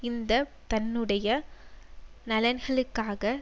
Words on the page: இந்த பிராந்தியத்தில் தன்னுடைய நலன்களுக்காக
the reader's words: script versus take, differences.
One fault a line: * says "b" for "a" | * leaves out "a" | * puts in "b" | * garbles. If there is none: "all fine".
* leaves out "பிராந்தியத்தில்"